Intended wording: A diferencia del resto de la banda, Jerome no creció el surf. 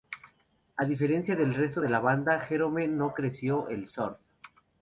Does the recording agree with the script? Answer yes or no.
yes